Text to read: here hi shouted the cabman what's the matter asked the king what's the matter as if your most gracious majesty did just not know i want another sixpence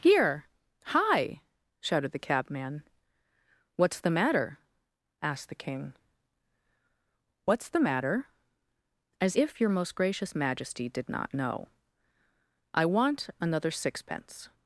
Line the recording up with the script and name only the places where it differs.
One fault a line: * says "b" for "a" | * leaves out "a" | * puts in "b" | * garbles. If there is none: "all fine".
* leaves out "just"